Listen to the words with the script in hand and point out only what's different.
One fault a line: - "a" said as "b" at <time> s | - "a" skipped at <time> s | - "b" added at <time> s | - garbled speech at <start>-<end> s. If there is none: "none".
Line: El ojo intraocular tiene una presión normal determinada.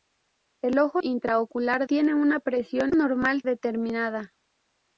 none